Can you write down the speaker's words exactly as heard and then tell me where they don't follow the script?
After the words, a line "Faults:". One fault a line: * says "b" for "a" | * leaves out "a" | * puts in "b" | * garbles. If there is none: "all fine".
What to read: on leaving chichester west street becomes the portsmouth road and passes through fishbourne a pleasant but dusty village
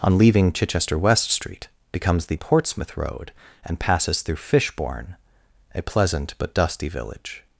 on leaving chichester west street becomes the portsmouth road and passes through fishbourne a pleasant but dusty village
Faults:
all fine